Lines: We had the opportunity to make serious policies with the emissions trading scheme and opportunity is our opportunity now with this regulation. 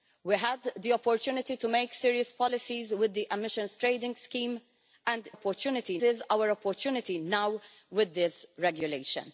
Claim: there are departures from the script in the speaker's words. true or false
false